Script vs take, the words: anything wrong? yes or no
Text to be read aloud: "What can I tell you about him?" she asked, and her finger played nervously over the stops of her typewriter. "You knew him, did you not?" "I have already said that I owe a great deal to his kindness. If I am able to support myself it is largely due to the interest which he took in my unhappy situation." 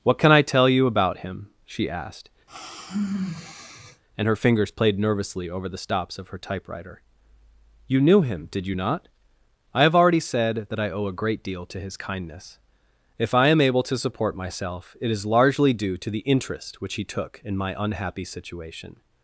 yes